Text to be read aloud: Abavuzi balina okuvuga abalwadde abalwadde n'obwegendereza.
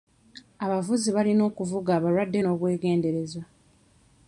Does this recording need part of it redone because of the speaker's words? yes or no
yes